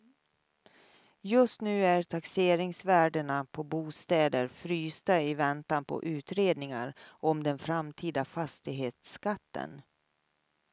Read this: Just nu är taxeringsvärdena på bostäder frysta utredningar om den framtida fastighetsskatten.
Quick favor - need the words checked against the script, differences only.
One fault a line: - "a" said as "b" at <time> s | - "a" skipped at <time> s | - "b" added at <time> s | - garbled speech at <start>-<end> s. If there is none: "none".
- "i väntan på" added at 5.2 s